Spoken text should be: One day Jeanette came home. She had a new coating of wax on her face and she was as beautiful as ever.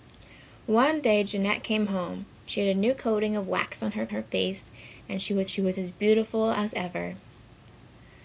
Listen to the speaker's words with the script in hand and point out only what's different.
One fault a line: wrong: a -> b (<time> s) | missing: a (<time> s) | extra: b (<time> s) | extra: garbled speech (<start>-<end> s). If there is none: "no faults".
extra: her (4.1 s)
extra: she was (5.5 s)